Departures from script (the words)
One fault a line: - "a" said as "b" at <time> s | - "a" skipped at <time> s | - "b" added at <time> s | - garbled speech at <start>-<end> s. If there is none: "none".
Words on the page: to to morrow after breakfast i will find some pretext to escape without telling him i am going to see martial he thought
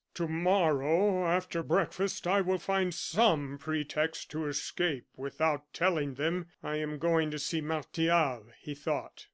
- "to" skipped at 0.3 s
- "him" said as "them" at 6.1 s